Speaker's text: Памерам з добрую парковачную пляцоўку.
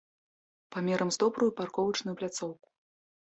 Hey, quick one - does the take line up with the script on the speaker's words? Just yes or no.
yes